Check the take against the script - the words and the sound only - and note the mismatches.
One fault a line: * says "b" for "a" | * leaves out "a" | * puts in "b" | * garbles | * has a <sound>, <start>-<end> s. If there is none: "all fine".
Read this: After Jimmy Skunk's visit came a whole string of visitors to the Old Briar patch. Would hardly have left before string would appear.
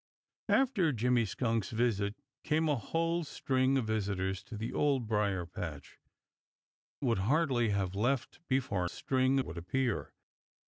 all fine